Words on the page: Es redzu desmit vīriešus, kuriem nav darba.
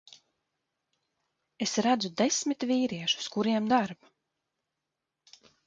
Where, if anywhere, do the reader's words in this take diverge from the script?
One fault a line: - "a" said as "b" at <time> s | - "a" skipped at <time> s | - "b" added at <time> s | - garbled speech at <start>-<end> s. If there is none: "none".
- "nav" skipped at 3.7 s